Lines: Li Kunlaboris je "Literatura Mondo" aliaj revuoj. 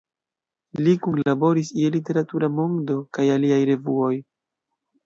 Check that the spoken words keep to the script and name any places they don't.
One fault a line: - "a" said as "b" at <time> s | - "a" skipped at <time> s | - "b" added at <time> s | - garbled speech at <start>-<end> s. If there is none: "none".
- "kaj" added at 3.2 s